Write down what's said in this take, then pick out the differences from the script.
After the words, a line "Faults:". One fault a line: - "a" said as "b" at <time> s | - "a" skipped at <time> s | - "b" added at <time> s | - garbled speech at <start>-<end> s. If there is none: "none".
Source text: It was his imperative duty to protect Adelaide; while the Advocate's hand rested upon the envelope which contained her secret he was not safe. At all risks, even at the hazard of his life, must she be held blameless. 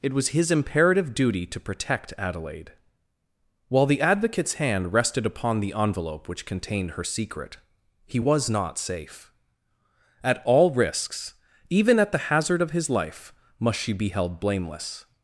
It was his imperative duty to protect Adelaide; while the Advocate's hand rested upon the envelope which contained her secret he was not safe. At all risks, even at the hazard of his life, must she be held blameless.
Faults:
none